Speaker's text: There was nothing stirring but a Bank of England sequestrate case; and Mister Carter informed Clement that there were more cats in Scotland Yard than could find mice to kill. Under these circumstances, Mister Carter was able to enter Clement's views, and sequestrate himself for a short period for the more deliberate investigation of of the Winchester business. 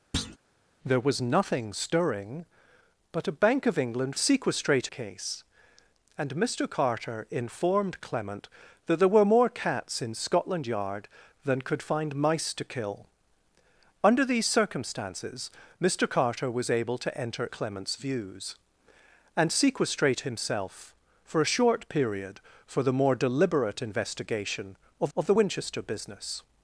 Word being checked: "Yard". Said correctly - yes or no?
yes